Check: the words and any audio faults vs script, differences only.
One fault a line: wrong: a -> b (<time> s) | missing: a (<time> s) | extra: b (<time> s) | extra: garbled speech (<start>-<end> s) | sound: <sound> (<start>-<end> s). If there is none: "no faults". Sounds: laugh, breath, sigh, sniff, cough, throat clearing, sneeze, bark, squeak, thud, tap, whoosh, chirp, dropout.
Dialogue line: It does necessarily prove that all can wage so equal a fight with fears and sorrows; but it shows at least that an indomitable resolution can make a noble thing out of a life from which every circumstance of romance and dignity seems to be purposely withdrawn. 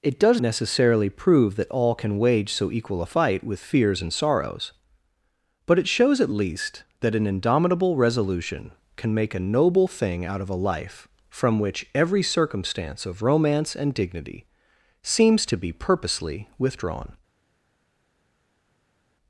no faults